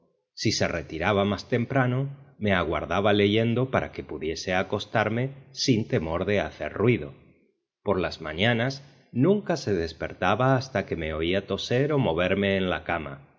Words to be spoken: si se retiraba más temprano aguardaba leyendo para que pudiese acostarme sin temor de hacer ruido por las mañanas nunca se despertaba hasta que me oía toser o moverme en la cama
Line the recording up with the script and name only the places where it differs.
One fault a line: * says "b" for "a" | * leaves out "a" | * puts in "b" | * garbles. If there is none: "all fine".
* puts in "me"